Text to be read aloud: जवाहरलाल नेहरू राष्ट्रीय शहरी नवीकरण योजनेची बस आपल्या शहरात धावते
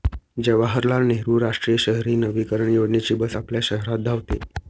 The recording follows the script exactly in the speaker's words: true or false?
true